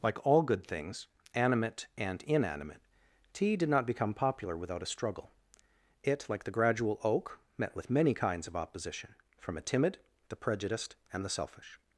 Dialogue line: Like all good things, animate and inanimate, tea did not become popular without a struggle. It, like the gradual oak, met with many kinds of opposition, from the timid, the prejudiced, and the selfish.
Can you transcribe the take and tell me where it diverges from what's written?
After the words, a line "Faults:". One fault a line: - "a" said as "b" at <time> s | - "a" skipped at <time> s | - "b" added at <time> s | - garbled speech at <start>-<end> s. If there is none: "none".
Like all good things, animate and inanimate, tea did not become popular without a struggle. It, like the gradual oak, met with many kinds of opposition, from a timid, the prejudiced, and the selfish.
Faults:
- "the" said as "a" at 9.6 s